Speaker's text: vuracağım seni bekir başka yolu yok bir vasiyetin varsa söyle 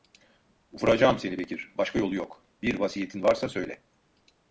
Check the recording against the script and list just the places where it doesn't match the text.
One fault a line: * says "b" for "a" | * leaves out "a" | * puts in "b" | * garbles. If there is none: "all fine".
all fine